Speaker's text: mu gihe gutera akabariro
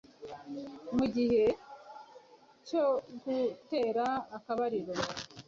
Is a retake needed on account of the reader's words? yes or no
yes